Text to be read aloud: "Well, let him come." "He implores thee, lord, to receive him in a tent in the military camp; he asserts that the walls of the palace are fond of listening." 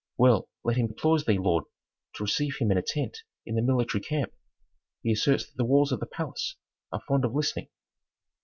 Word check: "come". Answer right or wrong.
wrong